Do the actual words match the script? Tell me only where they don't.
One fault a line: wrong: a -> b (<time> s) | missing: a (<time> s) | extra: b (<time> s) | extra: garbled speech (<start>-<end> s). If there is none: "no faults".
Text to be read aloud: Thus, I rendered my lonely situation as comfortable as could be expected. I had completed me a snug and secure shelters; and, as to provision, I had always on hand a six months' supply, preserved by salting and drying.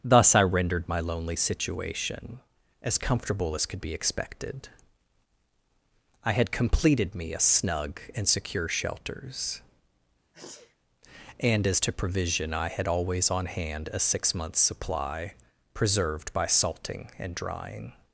no faults